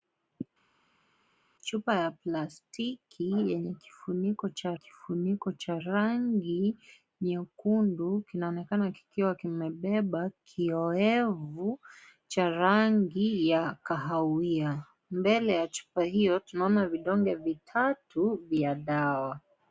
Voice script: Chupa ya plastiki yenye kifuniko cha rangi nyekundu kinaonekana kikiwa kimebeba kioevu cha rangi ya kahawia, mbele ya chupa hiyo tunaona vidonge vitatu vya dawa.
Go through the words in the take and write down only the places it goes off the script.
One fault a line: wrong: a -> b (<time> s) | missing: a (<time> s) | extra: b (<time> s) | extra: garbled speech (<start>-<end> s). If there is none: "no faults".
extra: kifuniko cha (4.7 s)